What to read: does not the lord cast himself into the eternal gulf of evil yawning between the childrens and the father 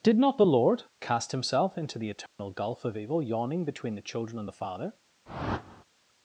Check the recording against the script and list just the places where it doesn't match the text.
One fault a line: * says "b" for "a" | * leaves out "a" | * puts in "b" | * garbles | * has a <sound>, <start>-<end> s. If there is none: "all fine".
* says "did" for "does"
* has a dropout, 2.3-2.4 s
* says "children" for "childrens"
* has a whoosh, 5.3-5.8 s